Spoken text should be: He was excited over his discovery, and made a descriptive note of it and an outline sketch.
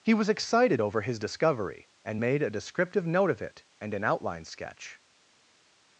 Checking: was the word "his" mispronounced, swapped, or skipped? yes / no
no